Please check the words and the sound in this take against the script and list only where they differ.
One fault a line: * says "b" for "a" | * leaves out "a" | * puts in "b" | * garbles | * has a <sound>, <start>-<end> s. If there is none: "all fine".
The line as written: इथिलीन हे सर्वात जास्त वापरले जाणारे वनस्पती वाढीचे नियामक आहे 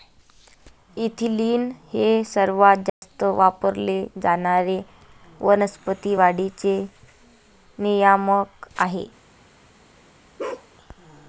* has a dropout, 2.9-3.0 s
* has a bark, 10.4-10.7 s